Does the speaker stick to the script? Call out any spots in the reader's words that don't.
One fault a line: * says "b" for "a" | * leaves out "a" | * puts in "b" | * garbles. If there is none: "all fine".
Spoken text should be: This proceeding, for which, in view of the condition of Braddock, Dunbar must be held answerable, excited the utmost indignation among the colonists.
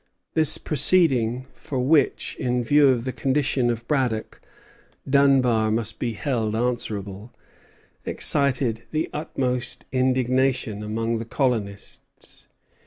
all fine